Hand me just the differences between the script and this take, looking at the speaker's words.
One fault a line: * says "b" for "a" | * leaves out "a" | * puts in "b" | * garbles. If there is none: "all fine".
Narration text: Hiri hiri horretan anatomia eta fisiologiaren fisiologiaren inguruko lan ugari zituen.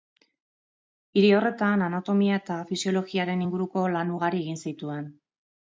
* leaves out "hiri"
* leaves out "fisiologiaren"
* puts in "egin"